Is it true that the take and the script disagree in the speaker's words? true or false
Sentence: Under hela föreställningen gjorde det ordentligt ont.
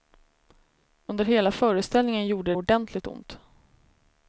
true